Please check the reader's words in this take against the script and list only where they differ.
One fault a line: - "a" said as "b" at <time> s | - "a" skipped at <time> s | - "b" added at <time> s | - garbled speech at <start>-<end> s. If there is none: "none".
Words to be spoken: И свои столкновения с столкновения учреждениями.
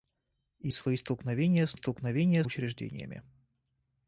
none